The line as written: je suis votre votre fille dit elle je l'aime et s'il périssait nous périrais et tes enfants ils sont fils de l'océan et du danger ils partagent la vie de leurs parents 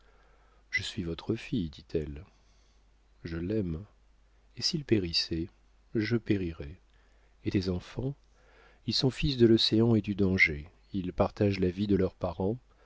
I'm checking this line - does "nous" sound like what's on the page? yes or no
no